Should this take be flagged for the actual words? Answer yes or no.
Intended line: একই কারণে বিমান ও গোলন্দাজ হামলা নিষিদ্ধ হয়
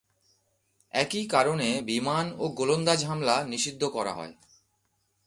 yes